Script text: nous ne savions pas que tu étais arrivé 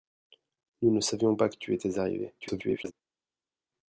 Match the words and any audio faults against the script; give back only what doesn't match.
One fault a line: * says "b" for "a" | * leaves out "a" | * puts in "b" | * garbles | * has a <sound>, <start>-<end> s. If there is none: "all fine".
* garbles